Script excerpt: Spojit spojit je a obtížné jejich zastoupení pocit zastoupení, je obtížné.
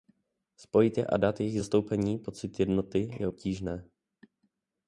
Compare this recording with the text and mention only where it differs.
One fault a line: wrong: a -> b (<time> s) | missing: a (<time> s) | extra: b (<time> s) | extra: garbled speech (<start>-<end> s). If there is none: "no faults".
missing: spojit (1.0 s)
wrong: obtížné -> dát (1.2 s)
wrong: zastoupení -> jednoty (2.6 s)